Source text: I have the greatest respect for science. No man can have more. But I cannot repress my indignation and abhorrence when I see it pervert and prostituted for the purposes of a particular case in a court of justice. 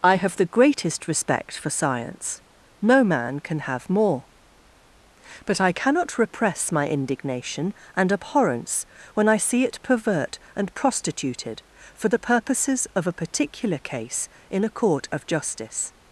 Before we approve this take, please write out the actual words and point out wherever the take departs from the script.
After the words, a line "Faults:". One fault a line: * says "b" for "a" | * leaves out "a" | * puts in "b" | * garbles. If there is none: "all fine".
I have the greatest respect for science. No man can have more. But I cannot repress my indignation and abhorrence when I see it pervert and prostituted for the purposes of a particular case in a court of justice.
Faults:
all fine